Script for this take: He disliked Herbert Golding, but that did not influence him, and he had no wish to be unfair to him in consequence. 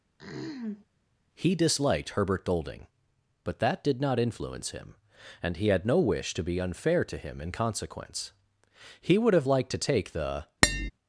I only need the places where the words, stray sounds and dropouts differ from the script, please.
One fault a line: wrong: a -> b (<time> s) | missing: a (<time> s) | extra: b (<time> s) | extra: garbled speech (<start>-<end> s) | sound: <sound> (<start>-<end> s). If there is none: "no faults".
sound: throat clearing (0.2-0.9 s)
extra: He would have liked to take the (9.0 s)
sound: tap (10.6-10.9 s)